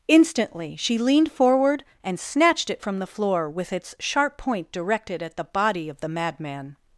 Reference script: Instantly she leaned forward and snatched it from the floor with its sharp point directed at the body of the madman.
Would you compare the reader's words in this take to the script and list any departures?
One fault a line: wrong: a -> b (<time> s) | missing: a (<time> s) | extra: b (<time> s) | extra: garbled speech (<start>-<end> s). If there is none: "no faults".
no faults